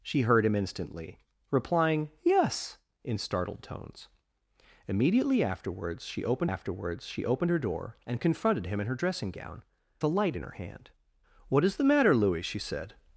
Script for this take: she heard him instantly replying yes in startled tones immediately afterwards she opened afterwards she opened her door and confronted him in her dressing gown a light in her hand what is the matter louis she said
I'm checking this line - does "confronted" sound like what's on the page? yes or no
yes